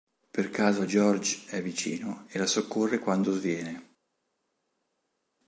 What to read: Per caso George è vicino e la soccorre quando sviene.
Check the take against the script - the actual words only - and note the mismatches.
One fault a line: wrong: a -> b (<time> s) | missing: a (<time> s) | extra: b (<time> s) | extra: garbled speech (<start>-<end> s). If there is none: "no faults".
no faults